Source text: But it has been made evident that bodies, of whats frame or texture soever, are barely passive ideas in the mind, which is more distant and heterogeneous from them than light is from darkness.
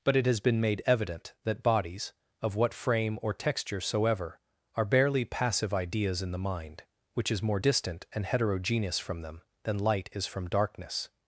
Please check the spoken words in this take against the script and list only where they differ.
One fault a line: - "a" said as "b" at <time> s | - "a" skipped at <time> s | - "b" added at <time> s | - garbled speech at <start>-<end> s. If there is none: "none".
- "whats" said as "what" at 2.5 s